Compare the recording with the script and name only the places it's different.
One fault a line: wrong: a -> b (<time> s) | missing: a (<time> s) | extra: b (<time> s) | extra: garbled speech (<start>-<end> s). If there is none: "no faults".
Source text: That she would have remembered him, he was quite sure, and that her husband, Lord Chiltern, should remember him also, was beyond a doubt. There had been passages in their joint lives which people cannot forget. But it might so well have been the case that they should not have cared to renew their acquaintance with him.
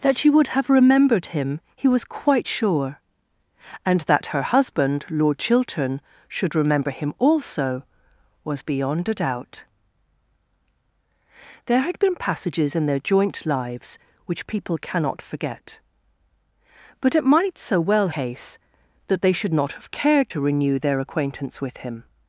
missing: have been the (18.1 s)